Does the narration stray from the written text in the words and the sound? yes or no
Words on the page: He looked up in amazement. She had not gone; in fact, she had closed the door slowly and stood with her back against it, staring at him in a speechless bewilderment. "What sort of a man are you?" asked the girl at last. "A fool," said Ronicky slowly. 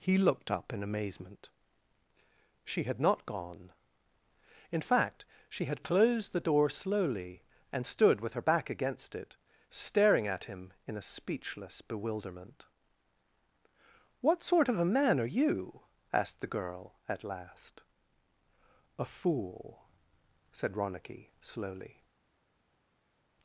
no